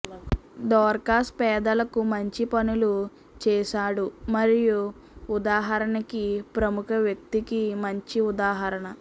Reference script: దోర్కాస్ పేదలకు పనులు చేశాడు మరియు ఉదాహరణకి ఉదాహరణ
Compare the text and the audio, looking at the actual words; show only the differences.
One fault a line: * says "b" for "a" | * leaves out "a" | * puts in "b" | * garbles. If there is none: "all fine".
* puts in "మంచి"
* puts in "ప్రముఖ వ్యక్తికి మంచి"